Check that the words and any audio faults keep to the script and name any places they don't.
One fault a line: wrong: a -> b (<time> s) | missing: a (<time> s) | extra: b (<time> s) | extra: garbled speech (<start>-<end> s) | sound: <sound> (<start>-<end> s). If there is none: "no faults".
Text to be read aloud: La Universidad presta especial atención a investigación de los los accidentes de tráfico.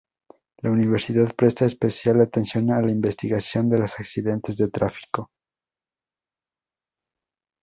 extra: la (2.8 s)
missing: los (4.0 s)